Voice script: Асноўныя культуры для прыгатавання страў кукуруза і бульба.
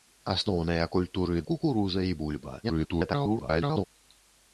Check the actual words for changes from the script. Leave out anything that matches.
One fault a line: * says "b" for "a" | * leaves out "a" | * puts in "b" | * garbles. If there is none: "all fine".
* leaves out "для прыгатавання страў"
* garbles